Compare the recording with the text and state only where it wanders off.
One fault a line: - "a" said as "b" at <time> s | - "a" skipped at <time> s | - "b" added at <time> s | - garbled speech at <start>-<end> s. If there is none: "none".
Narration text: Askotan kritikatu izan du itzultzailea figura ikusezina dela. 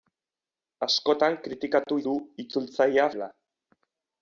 - "izan" skipped at 2.0 s
- "figura ikusezina" skipped at 3.1 s